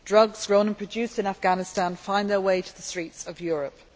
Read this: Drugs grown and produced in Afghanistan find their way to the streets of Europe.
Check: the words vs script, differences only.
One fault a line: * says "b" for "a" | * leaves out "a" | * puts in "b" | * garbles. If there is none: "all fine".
all fine